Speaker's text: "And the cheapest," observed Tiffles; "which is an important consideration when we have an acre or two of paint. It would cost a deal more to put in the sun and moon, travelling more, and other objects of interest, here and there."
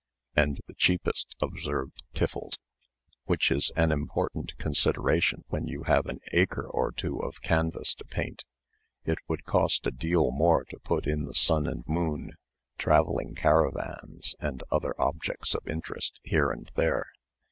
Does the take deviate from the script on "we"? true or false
true